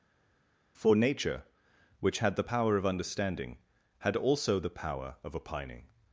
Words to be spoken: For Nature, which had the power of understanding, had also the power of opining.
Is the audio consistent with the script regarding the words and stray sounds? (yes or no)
yes